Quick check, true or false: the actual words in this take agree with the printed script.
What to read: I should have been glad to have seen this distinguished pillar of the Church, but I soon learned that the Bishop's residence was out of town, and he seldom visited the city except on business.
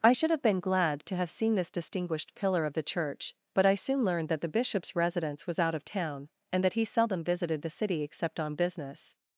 false